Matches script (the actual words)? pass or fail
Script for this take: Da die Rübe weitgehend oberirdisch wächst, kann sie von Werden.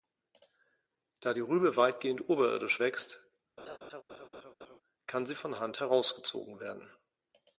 fail